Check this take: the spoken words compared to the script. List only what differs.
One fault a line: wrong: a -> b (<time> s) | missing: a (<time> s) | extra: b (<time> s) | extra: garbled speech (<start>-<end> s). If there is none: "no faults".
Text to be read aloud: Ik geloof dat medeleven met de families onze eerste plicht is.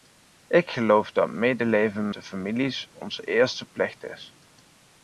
missing: met (2.1 s)